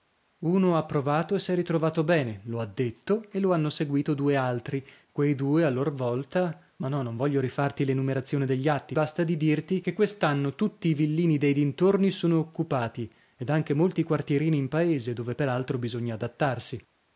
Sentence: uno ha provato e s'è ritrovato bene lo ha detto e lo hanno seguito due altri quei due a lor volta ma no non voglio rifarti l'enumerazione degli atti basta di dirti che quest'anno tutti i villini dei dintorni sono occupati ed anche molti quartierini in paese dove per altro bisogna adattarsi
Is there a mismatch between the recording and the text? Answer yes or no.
no